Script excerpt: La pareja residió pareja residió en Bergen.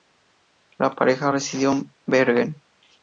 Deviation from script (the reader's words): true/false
true